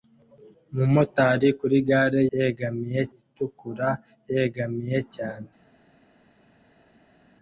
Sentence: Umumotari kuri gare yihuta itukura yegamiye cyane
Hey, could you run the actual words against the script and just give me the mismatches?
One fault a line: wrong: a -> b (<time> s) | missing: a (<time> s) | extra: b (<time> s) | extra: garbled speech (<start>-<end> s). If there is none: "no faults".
wrong: yihuta -> yegamiye (2.3 s)